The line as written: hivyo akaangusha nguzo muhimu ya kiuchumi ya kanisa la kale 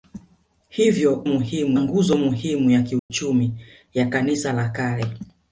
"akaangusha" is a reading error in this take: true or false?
true